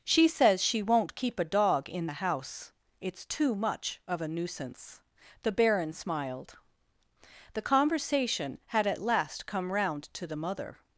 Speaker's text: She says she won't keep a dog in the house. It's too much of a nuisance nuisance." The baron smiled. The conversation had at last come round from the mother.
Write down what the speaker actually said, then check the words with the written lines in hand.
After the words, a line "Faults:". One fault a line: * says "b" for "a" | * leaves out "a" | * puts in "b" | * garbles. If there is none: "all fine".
She says she won't keep a dog in the house. It's too much of a nuisance." The baron smiled. The conversation had at last come round to the mother.
Faults:
* leaves out "nuisance"
* says "to" for "from"